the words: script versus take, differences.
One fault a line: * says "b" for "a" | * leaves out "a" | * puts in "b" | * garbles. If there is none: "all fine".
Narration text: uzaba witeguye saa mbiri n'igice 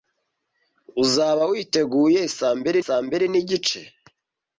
* puts in "saa mbiri"